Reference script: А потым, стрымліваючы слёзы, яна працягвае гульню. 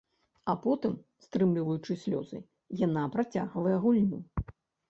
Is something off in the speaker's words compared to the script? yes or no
no